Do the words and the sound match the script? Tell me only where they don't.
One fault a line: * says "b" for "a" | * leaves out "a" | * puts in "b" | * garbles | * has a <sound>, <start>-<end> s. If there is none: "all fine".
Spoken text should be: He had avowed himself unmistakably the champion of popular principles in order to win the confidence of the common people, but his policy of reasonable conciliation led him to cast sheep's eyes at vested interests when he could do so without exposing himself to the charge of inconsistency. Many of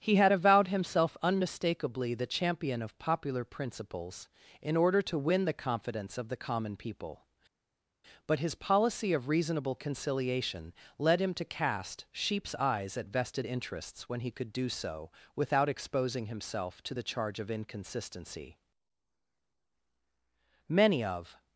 all fine